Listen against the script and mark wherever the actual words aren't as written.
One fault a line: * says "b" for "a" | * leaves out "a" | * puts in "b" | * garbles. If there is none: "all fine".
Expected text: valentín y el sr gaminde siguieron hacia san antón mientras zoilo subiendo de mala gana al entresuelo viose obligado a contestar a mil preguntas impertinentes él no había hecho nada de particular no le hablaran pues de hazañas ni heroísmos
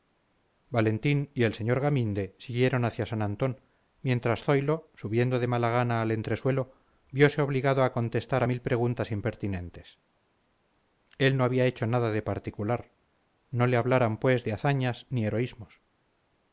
all fine